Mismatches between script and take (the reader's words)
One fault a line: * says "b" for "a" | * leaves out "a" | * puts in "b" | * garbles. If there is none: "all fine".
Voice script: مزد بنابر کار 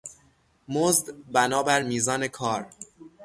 * puts in "میزان"